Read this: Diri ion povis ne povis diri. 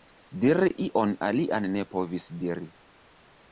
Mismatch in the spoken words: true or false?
true